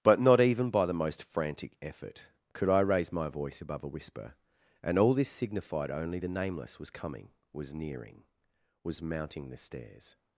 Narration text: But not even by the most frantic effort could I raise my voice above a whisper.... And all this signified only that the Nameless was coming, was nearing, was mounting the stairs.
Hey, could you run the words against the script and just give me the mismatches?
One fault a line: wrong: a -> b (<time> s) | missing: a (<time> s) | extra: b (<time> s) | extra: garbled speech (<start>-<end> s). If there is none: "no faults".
missing: that (6.2 s)